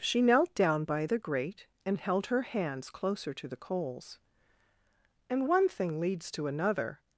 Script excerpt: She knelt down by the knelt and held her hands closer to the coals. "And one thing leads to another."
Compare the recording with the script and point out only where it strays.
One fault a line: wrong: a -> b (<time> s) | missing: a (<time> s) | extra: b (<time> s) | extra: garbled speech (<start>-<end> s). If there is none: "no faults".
wrong: knelt -> grate (1.2 s)